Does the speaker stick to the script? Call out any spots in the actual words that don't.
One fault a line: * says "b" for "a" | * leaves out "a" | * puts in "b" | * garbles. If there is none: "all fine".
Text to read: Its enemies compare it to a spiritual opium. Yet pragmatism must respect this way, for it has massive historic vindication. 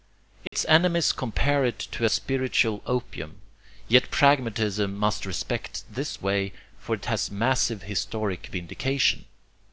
all fine